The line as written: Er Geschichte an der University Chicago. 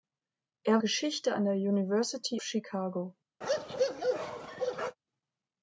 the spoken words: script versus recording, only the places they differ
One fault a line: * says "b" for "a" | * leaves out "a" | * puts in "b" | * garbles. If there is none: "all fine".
all fine